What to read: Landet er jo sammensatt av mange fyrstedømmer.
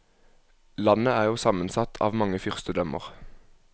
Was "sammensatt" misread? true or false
false